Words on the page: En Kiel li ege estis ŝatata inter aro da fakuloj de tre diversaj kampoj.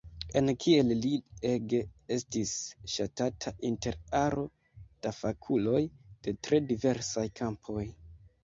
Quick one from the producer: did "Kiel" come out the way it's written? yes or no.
yes